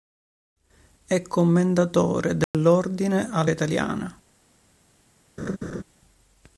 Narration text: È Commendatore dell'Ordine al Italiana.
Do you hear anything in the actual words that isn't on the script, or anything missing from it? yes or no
no